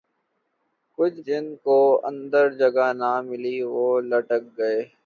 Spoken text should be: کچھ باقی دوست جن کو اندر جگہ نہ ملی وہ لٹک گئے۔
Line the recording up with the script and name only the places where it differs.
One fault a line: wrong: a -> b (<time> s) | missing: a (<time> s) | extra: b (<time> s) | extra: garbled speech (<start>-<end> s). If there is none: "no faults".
missing: باقی دوست (1.2 s)